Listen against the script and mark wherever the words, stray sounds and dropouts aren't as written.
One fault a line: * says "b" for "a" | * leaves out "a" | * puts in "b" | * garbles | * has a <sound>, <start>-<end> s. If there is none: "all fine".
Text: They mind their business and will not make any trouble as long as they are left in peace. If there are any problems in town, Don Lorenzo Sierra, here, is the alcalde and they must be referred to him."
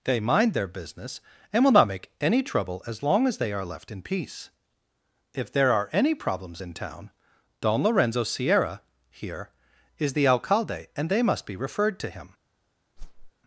* has a whoosh, 13.0-13.3 s